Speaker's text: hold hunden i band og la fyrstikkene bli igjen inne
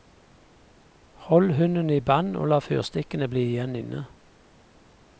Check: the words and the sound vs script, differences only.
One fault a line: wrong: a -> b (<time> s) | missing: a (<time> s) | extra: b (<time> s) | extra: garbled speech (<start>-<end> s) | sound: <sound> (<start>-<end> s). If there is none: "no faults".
no faults